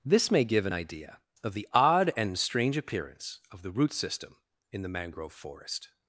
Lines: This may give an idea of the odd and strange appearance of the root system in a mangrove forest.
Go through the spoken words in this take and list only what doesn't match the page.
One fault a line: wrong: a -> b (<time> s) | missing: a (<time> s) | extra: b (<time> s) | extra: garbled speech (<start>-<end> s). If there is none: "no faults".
wrong: a -> the (4.8 s)